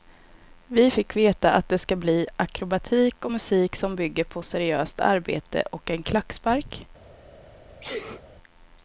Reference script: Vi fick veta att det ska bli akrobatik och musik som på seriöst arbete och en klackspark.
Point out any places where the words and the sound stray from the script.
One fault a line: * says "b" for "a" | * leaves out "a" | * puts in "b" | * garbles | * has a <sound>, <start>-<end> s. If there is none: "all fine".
* puts in "bygger"
* has a sneeze, 7.8-8.2 s